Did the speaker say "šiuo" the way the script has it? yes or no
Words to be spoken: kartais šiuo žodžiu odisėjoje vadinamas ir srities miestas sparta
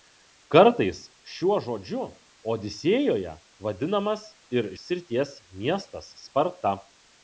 yes